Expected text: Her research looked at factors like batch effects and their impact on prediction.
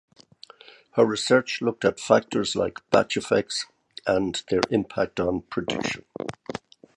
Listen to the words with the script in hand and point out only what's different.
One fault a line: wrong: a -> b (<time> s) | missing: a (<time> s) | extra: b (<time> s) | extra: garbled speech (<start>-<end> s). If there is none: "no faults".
no faults